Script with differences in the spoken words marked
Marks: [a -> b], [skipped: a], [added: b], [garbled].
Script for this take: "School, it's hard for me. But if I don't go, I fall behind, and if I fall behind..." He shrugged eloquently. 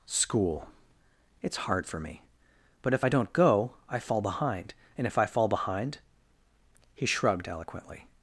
"School, it's hard for me. But if I don't go, I fall behind, and if I fall behind..." He shrugged eloquently.